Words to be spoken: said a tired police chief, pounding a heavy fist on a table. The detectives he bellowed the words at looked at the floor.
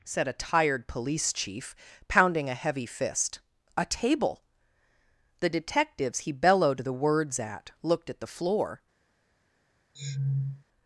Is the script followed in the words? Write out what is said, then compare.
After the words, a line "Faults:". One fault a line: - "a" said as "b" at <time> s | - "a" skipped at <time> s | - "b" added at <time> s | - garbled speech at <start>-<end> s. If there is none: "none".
said a tired police chief, pounding a heavy fist a table. The detectives he bellowed the words at looked at the floor.
Faults:
- "on" skipped at 3.4 s